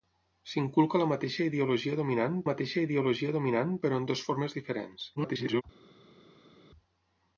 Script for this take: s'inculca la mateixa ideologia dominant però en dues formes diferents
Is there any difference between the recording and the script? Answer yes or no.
yes